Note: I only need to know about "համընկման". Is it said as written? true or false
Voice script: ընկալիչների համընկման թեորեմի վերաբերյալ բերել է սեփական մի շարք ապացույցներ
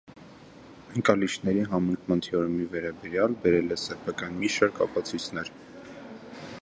true